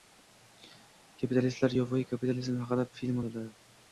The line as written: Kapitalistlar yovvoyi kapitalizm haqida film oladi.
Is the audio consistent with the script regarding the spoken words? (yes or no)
yes